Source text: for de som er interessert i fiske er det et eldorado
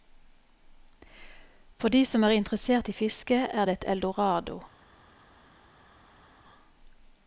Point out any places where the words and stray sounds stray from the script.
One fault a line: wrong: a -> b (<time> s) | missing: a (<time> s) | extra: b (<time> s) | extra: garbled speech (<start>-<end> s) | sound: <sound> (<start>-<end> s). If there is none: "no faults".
no faults